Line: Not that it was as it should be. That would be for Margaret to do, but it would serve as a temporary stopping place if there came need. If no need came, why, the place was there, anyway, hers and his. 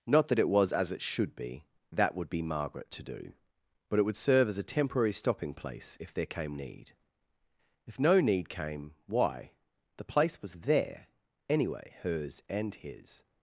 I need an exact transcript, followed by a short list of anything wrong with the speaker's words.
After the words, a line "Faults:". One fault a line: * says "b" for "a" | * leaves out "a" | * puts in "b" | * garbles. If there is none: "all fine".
Not that it was as it should be. That would be Margaret to do, but it would serve as a temporary stopping place if there came need. If no need came, why, the place was there, anyway, hers and his.
Faults:
* leaves out "for"